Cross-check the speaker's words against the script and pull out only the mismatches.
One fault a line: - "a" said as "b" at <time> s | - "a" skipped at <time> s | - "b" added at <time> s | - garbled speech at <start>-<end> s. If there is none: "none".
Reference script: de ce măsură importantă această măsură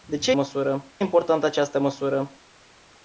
none